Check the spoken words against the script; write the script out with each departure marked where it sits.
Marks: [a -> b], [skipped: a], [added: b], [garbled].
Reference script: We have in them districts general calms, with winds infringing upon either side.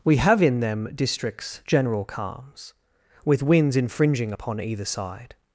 We have in them districts general calms, with winds infringing upon either side.